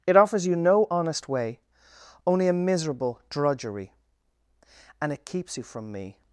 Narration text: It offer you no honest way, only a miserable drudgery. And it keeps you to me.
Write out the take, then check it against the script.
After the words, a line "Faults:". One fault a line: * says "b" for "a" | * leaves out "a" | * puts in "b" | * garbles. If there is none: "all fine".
It offers you no honest way, only a miserable drudgery. And it keeps you from me.
Faults:
* says "offers" for "offer"
* says "from" for "to"